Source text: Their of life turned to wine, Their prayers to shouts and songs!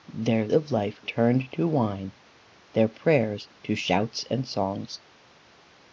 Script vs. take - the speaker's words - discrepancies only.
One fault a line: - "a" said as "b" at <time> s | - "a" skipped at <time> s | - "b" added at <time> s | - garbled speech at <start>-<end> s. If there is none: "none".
none